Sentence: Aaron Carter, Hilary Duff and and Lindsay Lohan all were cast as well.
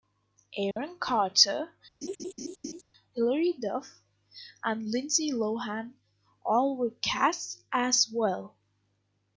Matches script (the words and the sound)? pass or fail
fail